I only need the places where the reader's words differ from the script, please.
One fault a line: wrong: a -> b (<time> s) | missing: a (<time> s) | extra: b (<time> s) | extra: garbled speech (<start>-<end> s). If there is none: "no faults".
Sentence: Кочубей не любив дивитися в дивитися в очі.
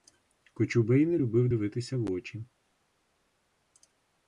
missing: дивитися в (2.1 s)